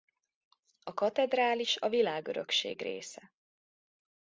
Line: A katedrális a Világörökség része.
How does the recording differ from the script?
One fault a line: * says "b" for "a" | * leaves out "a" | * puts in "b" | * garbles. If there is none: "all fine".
all fine